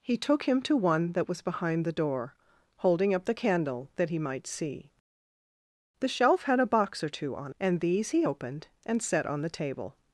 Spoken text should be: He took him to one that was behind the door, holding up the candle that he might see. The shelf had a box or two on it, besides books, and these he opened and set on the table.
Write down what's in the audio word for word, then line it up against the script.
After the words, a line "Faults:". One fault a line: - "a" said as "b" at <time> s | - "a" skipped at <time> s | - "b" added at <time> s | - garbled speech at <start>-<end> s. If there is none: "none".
He took him to one that was behind the door, holding up the candle that he might see. The shelf had a box or two on and these he opened and set on the table.
Faults:
- "it besides books" skipped at 7.5 s